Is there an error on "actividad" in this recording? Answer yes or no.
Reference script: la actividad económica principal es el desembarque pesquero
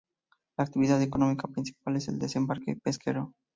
no